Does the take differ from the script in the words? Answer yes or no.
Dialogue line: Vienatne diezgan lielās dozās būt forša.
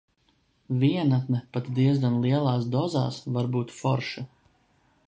yes